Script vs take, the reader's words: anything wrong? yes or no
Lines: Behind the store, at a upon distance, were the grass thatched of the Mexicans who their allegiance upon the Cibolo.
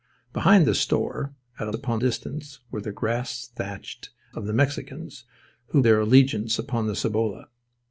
no